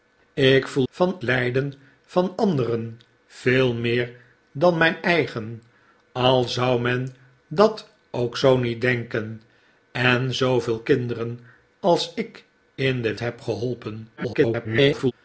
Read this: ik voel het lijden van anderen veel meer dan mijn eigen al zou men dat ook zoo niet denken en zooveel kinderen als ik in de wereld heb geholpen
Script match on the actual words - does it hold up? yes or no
no